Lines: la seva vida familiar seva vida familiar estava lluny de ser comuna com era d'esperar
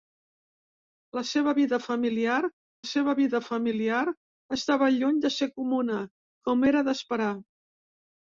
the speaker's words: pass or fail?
pass